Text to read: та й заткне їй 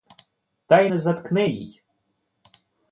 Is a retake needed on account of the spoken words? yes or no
yes